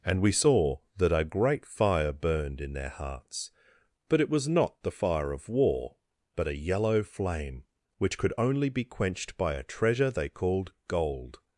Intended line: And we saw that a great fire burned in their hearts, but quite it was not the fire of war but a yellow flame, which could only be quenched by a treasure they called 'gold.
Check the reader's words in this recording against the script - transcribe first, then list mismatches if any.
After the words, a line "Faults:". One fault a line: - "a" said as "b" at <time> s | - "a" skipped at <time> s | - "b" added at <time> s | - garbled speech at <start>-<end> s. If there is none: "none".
And we saw that a great fire burned in their hearts, but it was not the fire of war but a yellow flame, which could only be quenched by a treasure they called 'gold.
Faults:
- "quite" skipped at 4.2 s